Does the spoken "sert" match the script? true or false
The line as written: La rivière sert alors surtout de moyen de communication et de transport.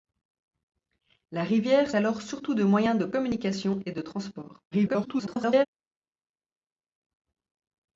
false